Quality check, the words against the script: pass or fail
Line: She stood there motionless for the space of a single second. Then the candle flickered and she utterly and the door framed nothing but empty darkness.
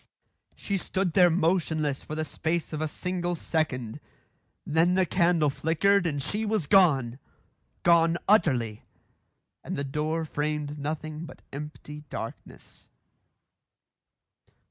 fail